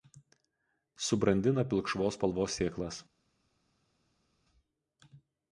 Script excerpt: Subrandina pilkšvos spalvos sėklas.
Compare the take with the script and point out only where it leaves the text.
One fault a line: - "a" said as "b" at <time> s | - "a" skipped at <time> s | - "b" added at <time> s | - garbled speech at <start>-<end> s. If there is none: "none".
none